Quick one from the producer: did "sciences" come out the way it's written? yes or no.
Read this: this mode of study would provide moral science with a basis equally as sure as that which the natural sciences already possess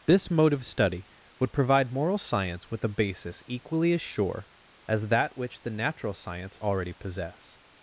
no